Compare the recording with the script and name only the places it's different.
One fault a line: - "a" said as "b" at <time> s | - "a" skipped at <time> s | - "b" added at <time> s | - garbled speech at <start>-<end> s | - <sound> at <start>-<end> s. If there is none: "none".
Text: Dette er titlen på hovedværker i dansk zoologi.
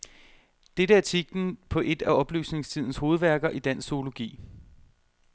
- "et af oplysningstidens" added at 1.8 s